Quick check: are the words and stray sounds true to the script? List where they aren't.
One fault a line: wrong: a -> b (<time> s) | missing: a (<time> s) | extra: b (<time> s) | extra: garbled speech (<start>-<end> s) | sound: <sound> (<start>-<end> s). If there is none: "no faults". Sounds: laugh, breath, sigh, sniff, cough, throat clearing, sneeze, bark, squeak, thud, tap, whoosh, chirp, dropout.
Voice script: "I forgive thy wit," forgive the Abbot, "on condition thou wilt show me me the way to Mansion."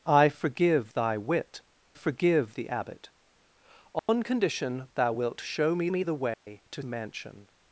sound: dropout (4.0-4.1 s)
sound: dropout (6.3-6.5 s)